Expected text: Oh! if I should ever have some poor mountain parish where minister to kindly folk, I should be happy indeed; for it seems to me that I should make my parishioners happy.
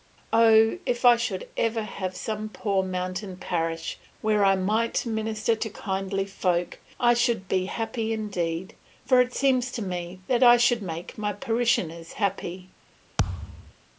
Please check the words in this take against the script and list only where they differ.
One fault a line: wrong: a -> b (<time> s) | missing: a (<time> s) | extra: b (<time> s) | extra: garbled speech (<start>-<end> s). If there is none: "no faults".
extra: I might (4.4 s)